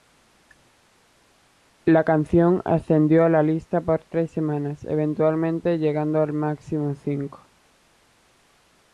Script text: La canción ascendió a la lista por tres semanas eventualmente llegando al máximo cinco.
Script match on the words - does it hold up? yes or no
yes